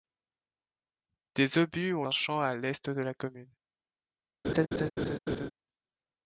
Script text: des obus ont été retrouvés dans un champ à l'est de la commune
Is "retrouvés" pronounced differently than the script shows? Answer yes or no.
yes